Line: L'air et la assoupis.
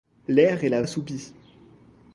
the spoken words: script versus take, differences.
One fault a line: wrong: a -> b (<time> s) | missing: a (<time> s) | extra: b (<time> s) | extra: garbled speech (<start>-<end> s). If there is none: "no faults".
no faults